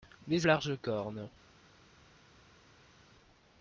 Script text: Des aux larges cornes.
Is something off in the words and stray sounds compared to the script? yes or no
no